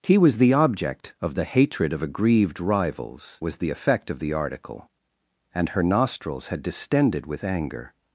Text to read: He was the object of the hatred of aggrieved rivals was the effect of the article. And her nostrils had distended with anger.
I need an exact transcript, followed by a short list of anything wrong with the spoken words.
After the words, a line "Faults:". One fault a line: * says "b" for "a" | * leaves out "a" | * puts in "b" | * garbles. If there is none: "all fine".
He was the object of the hatred of aggrieved rivals was the effect of the article. And her nostrils had distended with anger.
Faults:
all fine